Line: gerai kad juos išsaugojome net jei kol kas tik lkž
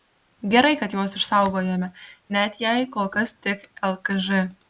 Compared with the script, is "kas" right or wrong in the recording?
right